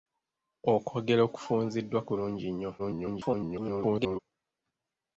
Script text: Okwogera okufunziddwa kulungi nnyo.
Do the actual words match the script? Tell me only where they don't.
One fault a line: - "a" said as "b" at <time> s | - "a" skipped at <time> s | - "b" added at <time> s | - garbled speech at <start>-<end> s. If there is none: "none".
- garbled speech at 2.8-4.2 s